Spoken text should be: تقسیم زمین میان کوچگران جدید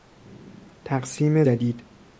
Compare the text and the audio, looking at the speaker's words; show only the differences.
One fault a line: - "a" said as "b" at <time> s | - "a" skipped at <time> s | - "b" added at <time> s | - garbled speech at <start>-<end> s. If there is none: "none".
- "زمین میان کوچگران" skipped at 1.4 s